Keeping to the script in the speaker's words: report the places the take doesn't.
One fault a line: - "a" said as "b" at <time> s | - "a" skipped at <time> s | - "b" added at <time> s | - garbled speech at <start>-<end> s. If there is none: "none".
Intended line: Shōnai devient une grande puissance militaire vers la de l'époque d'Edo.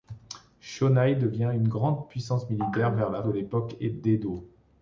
none